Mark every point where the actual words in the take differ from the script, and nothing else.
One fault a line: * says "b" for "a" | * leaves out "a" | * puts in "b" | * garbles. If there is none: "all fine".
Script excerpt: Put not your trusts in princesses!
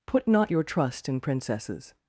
* says "trust" for "trusts"